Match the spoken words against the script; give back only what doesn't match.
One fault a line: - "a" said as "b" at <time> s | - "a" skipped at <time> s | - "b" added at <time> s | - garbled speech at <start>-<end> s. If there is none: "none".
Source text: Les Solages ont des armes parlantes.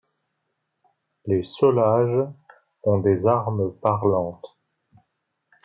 none